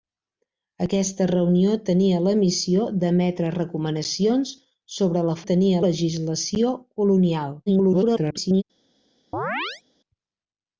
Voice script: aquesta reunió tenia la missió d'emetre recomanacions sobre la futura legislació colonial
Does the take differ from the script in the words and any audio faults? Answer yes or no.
yes